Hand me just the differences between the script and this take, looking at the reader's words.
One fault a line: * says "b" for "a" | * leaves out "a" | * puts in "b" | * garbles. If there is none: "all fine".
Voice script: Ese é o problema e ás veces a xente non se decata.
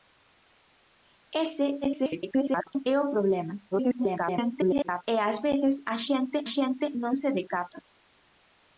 * garbles
* garbles
* puts in "xente"